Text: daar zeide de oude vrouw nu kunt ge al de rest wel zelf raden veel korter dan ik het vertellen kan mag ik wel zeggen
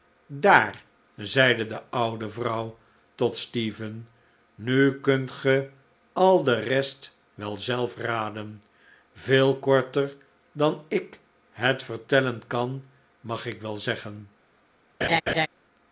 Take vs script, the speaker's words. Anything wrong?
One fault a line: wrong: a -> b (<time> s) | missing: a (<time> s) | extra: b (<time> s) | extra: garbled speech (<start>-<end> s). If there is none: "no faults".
extra: tot stephen (3.1 s)